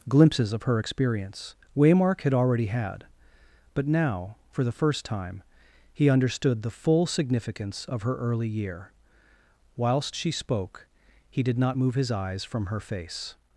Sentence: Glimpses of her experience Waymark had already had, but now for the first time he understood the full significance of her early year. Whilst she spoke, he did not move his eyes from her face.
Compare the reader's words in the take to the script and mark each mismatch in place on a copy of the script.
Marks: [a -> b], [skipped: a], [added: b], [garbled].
Glimpses of her experience Waymark had already had, but now for the first time he understood the full significance of her early year. Whilst she spoke, he did not move his eyes from her face.